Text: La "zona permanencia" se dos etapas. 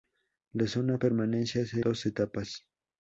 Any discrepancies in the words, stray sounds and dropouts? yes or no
no